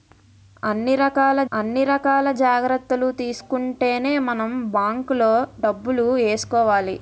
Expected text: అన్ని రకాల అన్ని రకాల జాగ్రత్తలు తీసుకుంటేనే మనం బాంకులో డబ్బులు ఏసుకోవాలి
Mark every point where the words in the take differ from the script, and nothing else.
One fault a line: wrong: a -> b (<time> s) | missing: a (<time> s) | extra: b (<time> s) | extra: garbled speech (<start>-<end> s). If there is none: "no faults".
no faults